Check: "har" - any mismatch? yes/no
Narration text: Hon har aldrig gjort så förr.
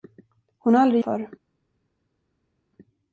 no